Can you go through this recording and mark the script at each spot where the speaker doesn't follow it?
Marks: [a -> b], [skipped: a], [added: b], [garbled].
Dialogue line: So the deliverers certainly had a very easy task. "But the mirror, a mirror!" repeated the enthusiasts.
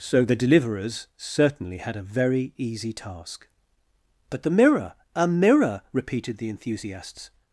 So the deliverers certainly had a very easy task. "But the mirror, a mirror!" repeated the enthusiasts.